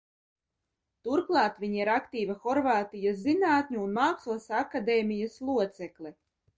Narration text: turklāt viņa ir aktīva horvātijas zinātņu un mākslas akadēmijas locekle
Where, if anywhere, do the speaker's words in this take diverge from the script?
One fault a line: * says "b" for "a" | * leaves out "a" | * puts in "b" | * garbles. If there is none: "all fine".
all fine